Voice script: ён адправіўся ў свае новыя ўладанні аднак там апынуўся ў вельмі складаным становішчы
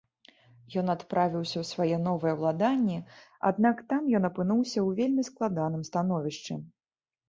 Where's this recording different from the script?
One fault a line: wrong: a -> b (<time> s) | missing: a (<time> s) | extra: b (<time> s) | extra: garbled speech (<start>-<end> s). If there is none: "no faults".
extra: ён (4.2 s)